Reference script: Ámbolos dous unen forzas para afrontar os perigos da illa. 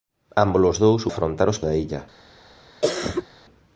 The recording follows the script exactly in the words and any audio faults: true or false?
false